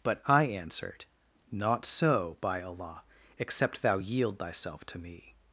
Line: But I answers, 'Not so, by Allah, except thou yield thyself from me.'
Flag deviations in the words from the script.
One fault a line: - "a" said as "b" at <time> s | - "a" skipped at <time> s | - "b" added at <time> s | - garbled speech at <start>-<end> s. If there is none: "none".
- "answers" said as "answered" at 0.5 s
- "from" said as "to" at 4.8 s